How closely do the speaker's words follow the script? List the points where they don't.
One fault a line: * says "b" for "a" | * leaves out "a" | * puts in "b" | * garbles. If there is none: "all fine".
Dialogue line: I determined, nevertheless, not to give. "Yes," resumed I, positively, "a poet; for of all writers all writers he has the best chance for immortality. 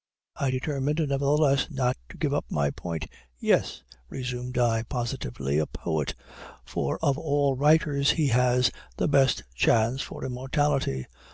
* puts in "up my point"
* leaves out "all writers"